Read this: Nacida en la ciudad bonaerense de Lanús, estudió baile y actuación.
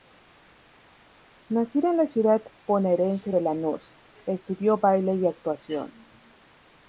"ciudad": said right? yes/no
yes